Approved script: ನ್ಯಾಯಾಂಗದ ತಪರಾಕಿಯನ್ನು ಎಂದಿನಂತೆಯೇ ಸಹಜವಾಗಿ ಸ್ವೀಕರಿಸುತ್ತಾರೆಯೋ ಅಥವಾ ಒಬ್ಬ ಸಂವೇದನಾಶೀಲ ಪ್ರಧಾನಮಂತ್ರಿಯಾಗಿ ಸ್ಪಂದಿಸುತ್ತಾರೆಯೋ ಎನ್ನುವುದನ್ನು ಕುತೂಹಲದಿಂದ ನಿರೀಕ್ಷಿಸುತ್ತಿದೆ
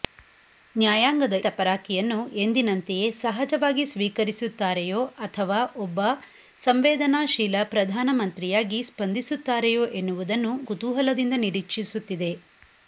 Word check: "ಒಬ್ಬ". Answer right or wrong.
right